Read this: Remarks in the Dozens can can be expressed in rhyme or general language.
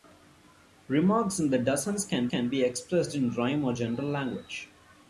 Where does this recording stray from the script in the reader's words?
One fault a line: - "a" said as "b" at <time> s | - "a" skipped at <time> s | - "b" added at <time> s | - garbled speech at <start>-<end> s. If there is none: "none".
none